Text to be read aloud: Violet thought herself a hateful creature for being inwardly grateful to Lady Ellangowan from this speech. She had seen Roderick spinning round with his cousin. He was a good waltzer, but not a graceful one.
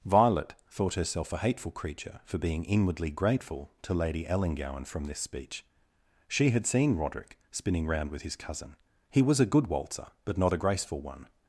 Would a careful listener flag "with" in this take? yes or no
no